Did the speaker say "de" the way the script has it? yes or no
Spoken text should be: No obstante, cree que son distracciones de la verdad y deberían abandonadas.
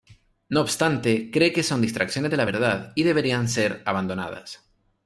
yes